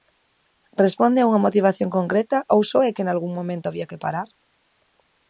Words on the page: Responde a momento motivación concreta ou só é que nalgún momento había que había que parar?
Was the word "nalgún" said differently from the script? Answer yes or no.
no